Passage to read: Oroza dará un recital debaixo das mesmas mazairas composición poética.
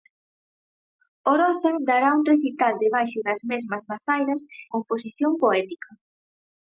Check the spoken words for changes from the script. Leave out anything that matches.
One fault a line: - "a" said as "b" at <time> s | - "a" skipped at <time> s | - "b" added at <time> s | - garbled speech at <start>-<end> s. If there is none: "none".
none